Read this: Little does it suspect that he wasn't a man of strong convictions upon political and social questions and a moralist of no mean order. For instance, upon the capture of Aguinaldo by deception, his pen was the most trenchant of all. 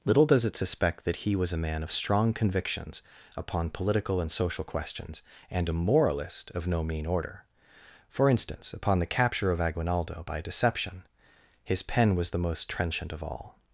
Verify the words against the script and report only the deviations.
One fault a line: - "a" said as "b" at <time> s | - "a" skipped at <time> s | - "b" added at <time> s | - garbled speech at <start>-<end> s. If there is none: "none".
- "wasn't" said as "was" at 1.4 s